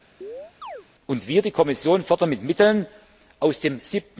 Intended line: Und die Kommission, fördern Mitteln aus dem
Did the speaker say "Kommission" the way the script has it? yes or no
yes